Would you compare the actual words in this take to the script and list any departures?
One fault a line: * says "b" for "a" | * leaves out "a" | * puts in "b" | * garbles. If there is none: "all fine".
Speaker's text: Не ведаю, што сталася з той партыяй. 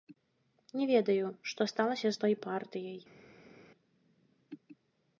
all fine